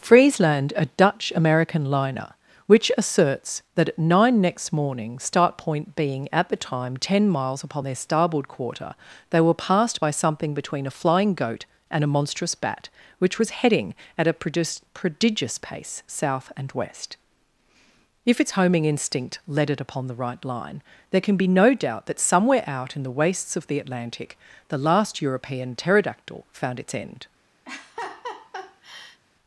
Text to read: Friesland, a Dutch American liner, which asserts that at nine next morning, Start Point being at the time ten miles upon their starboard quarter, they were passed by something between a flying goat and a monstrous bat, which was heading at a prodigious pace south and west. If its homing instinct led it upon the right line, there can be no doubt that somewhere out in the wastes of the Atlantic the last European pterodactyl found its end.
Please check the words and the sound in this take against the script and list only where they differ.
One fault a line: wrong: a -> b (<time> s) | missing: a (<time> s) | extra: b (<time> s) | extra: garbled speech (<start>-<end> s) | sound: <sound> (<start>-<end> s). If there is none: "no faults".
sound: laugh (27.6-29.2 s)